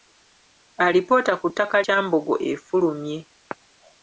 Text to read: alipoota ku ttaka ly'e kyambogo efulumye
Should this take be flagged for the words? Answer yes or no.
yes